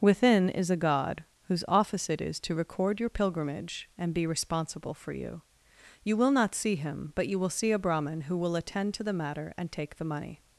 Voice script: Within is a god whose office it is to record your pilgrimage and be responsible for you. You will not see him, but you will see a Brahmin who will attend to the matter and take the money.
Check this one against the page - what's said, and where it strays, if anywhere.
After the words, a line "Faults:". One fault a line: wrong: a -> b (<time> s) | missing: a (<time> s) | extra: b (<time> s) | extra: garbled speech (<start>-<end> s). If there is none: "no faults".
Within is a god whose office it is to record your pilgrimage and be responsible for you. You will not see him, but you will see a Brahmin who will attend to the matter and take the money.
Faults:
no faults